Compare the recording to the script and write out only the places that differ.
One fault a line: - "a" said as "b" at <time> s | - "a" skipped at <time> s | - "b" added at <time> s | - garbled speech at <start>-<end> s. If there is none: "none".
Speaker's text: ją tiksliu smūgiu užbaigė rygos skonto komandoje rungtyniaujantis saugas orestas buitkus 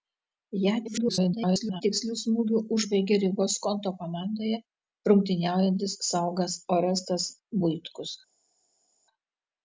- garbled speech at 0.8-1.8 s